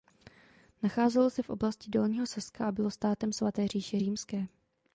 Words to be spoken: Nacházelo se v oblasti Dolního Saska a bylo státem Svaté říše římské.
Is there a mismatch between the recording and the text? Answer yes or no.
no